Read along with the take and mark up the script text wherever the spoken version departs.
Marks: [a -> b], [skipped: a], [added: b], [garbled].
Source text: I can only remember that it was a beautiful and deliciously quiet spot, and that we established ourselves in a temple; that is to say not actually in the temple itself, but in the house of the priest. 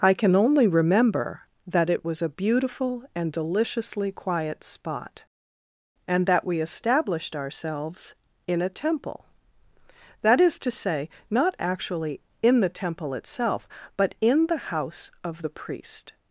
I can only remember that it was a beautiful and deliciously quiet spot, and that we established ourselves in a temple; that is to say not actually in the temple itself, but in the house of the priest.